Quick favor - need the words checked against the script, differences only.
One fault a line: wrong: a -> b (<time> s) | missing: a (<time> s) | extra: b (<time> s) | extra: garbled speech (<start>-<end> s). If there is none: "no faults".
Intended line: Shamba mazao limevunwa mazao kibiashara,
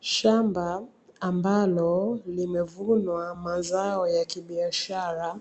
wrong: mazao -> ambalo (1.2 s)
extra: ya (4.1 s)